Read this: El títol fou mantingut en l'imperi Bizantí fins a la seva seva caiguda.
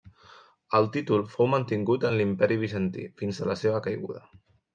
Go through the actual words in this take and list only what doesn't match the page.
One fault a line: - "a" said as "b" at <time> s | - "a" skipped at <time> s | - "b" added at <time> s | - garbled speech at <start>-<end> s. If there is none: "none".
- "seva" skipped at 3.8 s